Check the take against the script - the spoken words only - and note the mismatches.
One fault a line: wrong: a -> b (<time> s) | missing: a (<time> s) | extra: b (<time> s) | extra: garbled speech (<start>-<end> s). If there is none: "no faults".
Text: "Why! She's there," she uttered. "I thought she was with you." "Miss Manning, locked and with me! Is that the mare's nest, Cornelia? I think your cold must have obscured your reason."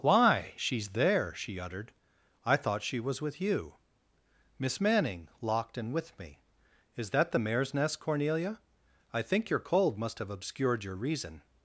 no faults